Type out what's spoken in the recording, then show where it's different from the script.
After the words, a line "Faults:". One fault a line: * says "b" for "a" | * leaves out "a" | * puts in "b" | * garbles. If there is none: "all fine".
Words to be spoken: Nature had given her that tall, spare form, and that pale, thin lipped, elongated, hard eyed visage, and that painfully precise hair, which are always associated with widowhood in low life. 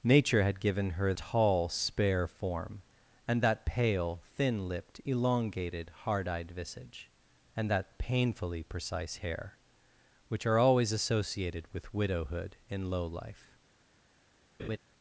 Nature had given her tall, spare form, and that pale, thin lipped, elongated, hard eyed visage, and that painfully precise hair, which are always associated with widowhood in low life.
Faults:
* leaves out "that"